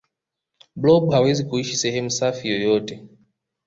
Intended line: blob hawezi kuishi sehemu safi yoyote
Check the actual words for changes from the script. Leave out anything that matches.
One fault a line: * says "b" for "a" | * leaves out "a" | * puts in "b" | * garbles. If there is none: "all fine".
all fine